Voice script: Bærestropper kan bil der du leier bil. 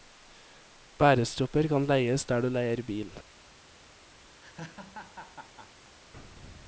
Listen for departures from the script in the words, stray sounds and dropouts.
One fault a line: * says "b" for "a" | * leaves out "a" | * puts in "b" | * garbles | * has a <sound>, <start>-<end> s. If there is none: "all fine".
* says "leies" for "bil"
* has a laugh, 4.4-5.9 s